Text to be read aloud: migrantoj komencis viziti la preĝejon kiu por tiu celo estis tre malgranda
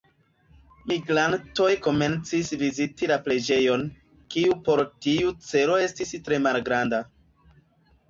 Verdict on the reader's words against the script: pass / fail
pass